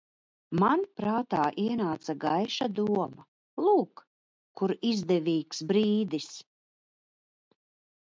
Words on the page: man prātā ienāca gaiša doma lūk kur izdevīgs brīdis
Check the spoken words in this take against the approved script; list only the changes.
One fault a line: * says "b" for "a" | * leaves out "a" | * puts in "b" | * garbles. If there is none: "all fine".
all fine